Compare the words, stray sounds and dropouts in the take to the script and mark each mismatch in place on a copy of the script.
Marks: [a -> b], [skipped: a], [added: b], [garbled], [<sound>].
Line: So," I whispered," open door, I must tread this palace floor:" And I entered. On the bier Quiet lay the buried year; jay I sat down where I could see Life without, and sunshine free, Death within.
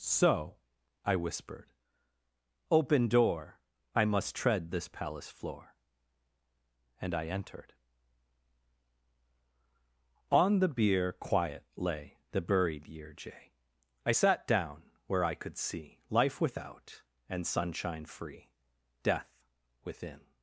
So," I whispered," open door, I must tread this palace floor:" And I entered. On the bier Quiet lay the buried year; jay I sat down where I could see Life without, and sunshine free, Death within.